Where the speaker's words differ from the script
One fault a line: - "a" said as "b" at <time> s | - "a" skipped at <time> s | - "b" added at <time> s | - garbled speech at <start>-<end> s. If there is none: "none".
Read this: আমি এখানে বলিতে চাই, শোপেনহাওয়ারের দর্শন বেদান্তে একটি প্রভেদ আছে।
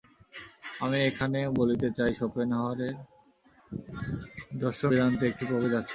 none